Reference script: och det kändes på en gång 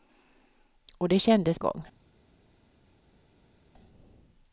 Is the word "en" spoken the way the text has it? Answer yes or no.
no